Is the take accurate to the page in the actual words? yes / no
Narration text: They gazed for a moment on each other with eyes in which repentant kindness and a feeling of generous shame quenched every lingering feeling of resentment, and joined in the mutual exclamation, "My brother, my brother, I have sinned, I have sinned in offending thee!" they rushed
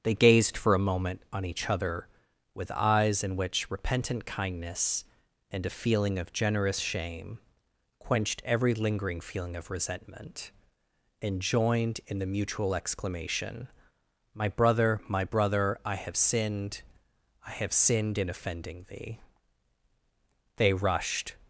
yes